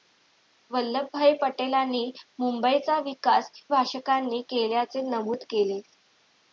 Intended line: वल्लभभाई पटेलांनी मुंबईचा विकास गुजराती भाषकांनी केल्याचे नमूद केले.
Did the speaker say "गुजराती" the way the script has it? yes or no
no